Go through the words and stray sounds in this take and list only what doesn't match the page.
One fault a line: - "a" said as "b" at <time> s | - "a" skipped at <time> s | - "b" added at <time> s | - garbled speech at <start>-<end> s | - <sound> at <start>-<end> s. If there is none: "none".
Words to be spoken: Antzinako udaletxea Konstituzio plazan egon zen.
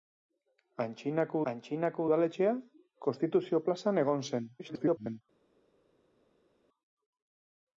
- "antzinako" added at 1.5 s
- garbled speech at 4.6-5.2 s